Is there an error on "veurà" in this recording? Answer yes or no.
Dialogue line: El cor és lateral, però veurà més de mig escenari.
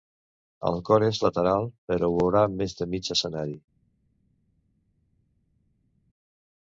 no